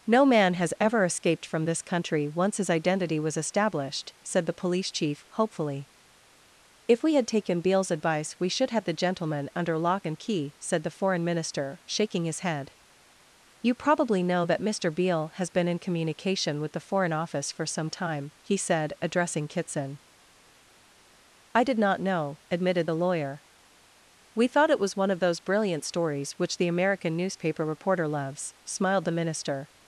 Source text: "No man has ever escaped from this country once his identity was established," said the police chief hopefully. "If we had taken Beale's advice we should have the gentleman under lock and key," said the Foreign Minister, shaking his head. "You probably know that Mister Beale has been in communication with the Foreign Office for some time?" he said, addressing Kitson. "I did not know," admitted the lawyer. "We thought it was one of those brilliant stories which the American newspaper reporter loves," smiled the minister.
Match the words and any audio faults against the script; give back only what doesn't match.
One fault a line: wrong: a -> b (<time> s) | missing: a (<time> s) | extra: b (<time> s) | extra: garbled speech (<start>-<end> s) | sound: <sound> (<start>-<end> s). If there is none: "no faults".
no faults